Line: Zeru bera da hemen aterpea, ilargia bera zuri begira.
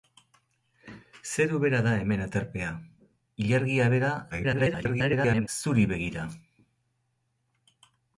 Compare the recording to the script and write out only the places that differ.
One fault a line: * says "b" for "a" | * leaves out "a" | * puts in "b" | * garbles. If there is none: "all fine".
* garbles